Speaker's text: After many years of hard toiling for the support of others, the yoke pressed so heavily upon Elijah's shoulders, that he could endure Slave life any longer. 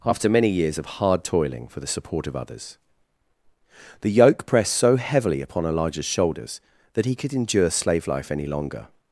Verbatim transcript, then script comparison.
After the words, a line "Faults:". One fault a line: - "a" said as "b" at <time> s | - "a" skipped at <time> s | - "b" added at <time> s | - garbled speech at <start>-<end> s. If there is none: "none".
After many years of hard toiling for the support of others, the yoke pressed so heavily upon Elijah's shoulders, that he could endure Slave life any longer.
Faults:
none